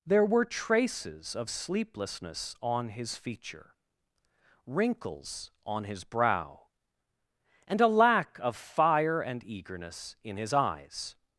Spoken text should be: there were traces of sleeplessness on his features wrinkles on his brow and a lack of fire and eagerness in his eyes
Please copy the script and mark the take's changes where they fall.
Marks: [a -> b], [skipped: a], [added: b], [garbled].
there were traces of sleeplessness on his [features -> feature] wrinkles on his brow and a lack of fire and eagerness in his eyes